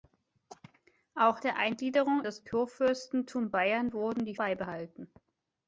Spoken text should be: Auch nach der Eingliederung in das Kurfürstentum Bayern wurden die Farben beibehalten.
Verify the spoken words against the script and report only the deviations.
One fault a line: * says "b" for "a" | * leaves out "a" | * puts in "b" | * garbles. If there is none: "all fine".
* leaves out "nach"
* leaves out "in"
* leaves out "Farben"